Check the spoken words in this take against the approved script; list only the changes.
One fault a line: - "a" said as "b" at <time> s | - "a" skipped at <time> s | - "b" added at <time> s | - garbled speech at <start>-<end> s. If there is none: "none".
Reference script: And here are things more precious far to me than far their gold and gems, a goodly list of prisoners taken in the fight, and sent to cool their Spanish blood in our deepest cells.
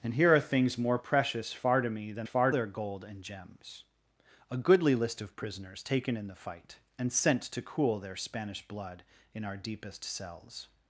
none